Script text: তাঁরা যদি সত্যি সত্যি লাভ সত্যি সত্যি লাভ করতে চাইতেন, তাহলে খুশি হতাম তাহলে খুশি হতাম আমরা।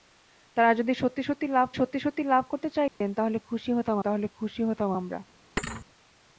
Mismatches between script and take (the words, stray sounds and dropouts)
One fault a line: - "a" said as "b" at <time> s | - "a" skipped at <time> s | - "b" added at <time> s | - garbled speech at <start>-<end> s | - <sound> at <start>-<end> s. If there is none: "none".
- dropout at 2.9-3.0 s
- thud at 5.6-5.9 s